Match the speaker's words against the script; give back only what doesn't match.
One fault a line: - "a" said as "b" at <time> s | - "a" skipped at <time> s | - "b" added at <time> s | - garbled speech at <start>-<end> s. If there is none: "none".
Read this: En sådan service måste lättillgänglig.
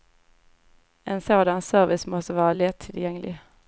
- "vara" added at 2.3 s